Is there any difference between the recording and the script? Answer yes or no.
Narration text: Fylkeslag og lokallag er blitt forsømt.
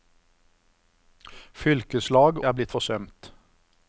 yes